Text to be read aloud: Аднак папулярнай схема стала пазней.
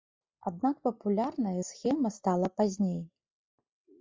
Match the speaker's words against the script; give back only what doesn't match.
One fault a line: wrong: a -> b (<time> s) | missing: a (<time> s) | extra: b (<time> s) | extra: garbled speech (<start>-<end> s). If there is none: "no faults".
no faults